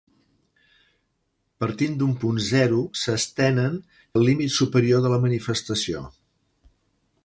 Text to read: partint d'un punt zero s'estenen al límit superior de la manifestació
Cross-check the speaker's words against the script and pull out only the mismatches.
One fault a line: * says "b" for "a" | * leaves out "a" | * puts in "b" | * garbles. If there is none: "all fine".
all fine